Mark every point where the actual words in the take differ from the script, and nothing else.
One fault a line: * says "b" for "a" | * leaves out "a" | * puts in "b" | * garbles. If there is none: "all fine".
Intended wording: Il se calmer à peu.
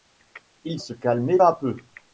all fine